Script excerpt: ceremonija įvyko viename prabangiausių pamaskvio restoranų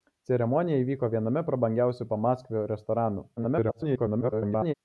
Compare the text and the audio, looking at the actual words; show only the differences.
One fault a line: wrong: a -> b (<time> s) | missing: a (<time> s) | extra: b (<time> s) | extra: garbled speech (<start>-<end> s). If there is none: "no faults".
extra: garbled speech (3.4-4.7 s)